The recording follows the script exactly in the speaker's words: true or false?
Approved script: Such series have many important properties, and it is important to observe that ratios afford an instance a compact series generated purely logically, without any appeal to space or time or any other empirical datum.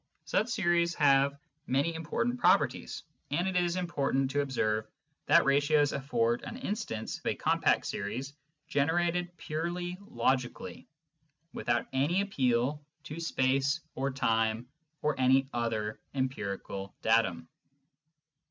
true